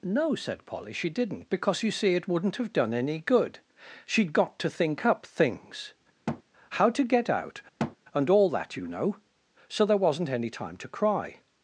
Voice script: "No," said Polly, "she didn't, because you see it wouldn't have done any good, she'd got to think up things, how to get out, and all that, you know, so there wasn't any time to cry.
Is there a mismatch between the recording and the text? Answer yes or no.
no